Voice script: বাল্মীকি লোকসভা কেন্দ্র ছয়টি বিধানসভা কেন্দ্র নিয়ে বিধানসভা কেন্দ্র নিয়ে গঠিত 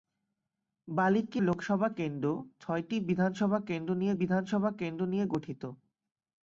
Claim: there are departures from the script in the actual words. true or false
false